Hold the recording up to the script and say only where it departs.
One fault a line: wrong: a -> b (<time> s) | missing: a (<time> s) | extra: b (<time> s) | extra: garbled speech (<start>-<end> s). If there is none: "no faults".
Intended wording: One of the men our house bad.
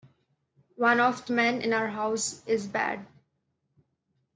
extra: in (1.6 s)
extra: is (2.5 s)